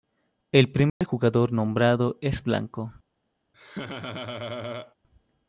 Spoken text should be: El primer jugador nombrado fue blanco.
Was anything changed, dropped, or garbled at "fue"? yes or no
yes